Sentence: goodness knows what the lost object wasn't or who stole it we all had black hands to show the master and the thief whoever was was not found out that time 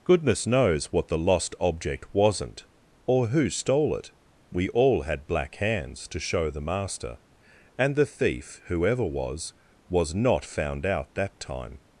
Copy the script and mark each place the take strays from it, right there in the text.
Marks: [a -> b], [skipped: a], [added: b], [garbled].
goodness knows what the lost object wasn't or who stole it we all had black hands to show the master and the thief whoever was was not found out that time